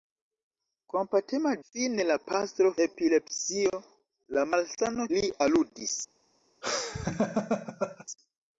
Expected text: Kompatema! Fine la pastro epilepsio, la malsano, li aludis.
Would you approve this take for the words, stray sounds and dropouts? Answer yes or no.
no